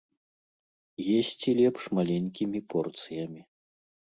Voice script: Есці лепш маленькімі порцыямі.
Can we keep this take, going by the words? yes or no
yes